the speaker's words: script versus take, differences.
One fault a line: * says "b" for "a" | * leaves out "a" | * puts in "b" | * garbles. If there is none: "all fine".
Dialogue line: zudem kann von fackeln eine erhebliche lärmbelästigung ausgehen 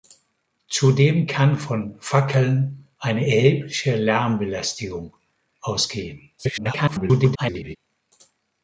* garbles